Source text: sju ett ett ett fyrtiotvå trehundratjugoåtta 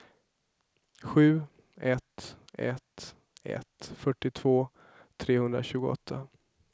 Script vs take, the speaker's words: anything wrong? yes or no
no